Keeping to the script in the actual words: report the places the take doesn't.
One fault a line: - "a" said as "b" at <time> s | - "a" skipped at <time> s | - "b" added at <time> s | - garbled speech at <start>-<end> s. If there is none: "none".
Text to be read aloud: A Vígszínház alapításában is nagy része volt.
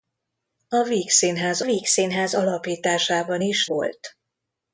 - "Vígszínház" added at 1.6 s
- "nagy része" skipped at 3.7 s